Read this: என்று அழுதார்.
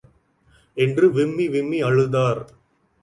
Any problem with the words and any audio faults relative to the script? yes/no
yes